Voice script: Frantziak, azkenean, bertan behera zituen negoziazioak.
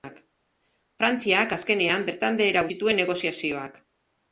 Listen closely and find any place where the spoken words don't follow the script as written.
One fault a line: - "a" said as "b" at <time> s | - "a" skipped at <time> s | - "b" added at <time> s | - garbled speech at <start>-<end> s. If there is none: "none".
none